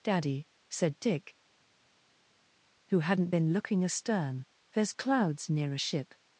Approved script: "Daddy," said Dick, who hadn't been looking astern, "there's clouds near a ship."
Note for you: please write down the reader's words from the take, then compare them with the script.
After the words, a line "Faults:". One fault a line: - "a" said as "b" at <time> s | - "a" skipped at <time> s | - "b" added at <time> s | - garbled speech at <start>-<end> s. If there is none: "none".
"Daddy," said Dick, who hadn't been looking astern, "there's clouds near a ship."
Faults:
none